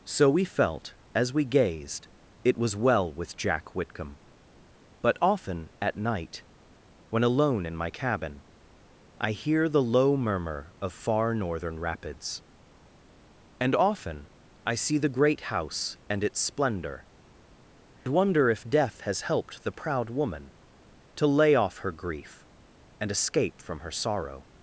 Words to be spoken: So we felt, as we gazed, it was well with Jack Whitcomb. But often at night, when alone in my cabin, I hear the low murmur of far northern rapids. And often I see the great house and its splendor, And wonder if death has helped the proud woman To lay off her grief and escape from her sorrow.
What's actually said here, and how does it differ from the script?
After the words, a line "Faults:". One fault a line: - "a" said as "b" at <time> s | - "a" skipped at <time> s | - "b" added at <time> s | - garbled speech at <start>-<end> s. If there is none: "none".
So we felt, as we gazed, it was well with Jack Whitcomb. But often at night, when alone in my cabin, I hear the low murmur of far northern rapids. And often I see the great house and its splendor, Wonder if death has helped the proud woman To lay off her grief and escape from her sorrow.
Faults:
- "And" skipped at 17.1 s